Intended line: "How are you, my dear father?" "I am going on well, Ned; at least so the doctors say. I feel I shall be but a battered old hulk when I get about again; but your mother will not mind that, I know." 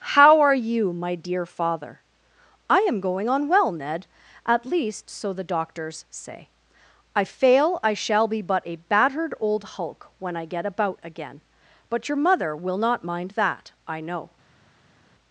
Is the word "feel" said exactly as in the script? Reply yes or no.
no